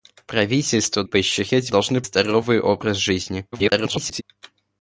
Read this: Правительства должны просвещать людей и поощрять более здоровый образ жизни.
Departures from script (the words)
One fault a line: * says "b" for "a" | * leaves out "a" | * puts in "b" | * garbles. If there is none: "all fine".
* leaves out "должны просвещать людей"
* says "должны" for "более"
* garbles